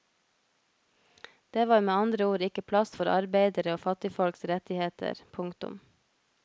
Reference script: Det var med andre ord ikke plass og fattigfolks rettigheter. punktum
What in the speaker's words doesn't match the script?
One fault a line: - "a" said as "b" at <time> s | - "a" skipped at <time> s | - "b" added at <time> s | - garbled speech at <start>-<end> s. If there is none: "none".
- "for arbeidere" added at 3.0 s